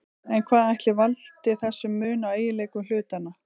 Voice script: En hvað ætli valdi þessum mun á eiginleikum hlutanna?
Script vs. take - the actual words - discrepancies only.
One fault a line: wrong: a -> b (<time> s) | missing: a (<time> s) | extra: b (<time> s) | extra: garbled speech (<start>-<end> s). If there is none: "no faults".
no faults